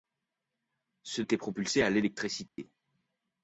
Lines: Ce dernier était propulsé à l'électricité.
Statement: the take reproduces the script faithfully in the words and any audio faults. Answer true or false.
false